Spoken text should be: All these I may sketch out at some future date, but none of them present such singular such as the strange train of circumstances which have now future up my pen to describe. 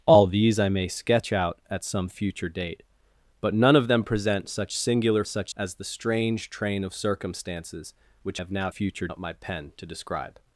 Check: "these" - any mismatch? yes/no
no